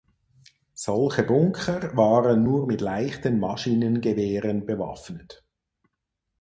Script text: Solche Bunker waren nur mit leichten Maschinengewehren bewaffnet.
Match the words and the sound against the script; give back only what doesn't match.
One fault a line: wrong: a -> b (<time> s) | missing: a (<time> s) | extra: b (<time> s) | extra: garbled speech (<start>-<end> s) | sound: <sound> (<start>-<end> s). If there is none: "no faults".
no faults